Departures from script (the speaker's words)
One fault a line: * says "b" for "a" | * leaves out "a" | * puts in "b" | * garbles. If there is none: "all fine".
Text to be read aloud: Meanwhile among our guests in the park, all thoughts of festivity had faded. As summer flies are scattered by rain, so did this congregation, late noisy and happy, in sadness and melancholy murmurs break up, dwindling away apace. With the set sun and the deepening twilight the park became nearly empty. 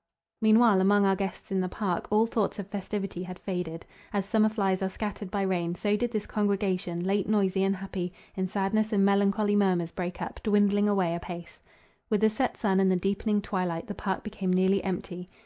all fine